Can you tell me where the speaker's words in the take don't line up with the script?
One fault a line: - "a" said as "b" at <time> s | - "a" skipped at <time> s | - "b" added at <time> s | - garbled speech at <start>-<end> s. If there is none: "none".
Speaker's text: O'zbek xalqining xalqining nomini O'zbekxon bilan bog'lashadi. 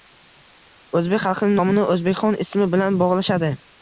- "xalqining" skipped at 1.6 s
- "ismi" added at 2.5 s